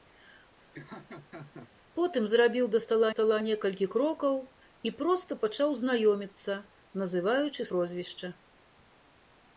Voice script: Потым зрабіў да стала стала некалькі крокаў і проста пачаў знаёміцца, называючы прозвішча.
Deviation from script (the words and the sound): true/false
true